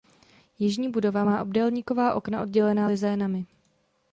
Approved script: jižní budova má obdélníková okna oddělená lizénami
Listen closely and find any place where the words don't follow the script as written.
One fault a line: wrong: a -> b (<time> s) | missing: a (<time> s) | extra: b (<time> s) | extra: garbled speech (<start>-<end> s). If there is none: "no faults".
no faults